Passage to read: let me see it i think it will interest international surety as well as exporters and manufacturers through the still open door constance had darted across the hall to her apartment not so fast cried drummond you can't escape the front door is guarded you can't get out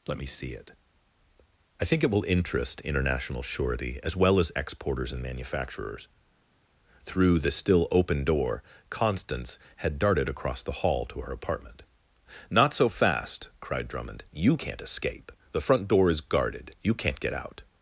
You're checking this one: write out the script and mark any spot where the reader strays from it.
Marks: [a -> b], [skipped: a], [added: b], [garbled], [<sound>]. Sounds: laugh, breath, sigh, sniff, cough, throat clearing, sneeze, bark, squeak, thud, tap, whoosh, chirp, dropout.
let me see it i think it will interest international surety as well as exporters and manufacturers through the still open door constance had darted across the hall to her apartment not so fast cried drummond you can't escape the front door is guarded you can't get out